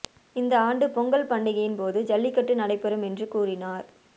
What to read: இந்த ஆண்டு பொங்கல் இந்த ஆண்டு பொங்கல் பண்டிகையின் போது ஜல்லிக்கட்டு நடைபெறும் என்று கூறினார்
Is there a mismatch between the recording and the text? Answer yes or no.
yes